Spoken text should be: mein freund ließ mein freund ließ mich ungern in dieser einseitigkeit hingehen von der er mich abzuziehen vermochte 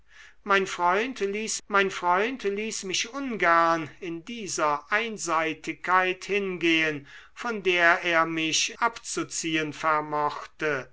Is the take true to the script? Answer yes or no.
yes